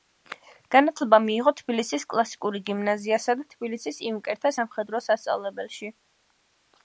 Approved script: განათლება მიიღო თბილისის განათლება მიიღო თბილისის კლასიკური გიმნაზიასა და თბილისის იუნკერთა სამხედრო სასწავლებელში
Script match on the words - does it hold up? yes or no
no